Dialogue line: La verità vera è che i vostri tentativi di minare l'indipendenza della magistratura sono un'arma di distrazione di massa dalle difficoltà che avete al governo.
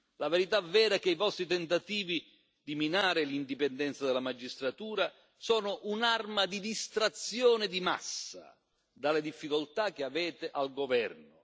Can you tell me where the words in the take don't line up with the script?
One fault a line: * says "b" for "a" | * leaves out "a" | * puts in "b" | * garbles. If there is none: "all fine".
all fine